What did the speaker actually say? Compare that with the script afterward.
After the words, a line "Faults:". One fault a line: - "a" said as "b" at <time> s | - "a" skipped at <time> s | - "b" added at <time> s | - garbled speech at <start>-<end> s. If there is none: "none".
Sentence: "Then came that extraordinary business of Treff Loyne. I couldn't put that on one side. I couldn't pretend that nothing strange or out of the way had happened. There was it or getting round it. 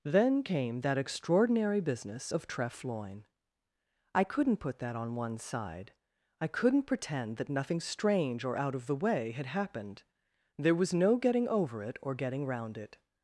"Then came that extraordinary business of Treff Loyne. I couldn't put that on one side. I couldn't pretend that nothing strange or out of the way had happened. There was no getting over it or getting round it.
Faults:
- "no getting over" added at 10.9 s